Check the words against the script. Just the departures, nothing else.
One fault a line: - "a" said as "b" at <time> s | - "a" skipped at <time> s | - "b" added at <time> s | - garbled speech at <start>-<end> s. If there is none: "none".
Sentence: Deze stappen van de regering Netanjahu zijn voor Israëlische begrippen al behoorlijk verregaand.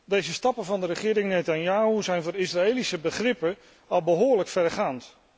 none